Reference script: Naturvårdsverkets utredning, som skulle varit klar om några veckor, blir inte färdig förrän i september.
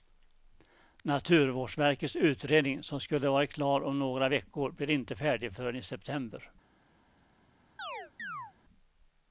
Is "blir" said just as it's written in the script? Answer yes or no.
yes